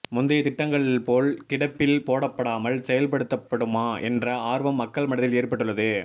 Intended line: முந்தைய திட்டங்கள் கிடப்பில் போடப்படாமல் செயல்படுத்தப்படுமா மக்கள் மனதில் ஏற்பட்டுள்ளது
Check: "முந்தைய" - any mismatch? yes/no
no